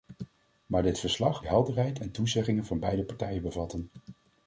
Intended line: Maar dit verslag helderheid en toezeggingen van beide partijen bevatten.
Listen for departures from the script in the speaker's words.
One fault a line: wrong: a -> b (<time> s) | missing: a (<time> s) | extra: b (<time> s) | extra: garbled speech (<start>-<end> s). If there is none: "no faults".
no faults